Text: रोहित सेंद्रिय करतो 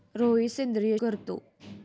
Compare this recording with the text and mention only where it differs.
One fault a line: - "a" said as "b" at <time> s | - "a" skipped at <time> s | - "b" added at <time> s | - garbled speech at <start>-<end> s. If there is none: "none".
none